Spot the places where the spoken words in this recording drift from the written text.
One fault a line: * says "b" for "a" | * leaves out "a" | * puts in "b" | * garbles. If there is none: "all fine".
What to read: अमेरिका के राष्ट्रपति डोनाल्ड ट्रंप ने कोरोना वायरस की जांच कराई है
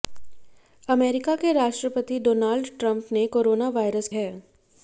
* leaves out "की जांच कराई"